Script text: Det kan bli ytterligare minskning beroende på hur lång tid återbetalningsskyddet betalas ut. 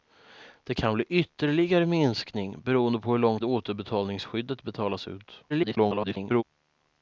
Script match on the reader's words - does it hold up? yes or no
no